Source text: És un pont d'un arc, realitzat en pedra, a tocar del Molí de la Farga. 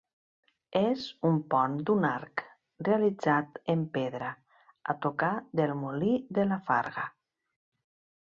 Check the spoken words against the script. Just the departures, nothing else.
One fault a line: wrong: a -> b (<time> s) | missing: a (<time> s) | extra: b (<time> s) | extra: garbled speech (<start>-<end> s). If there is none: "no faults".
no faults